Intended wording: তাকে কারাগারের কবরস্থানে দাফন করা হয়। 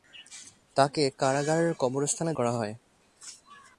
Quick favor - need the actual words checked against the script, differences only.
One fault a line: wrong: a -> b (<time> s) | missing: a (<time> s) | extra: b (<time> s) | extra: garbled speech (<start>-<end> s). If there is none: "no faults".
missing: দাফন (2.3 s)